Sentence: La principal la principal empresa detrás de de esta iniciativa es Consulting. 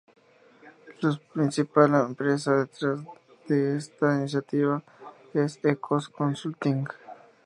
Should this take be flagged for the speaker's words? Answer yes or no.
yes